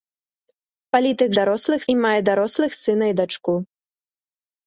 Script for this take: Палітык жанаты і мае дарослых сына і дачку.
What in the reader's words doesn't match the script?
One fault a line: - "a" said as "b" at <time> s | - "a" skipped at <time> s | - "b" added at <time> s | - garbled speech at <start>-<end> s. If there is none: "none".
- "жанаты" said as "дарослых" at 1.4 s